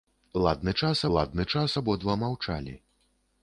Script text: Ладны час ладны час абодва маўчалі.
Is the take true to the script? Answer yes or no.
yes